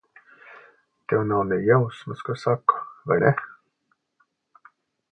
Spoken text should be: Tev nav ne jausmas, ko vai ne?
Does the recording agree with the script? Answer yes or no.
no